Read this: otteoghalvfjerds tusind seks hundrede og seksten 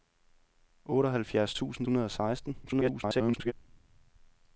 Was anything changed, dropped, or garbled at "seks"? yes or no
yes